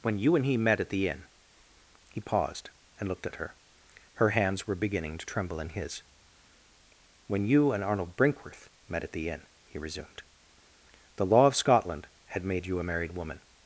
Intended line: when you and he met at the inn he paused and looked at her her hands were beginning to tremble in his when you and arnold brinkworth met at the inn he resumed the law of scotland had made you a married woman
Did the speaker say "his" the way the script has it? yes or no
yes